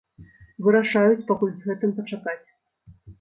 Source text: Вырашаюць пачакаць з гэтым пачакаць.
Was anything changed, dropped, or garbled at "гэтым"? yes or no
no